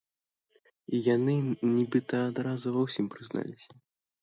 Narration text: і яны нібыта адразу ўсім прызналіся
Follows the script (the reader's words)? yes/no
no